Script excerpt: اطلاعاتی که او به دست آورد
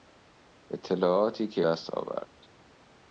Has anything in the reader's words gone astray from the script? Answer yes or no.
yes